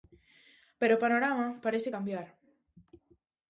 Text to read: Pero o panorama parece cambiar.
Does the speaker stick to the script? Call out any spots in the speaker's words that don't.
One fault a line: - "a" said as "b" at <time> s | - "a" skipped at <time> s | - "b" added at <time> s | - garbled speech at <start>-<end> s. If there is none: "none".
none